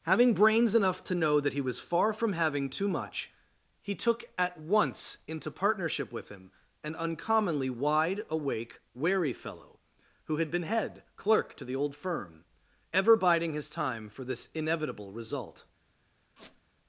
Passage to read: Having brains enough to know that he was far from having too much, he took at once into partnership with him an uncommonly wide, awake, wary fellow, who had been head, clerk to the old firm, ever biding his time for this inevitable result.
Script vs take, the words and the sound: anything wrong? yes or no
yes